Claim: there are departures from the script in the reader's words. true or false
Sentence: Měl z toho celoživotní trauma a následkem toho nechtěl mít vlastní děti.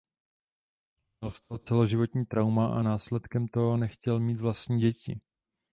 false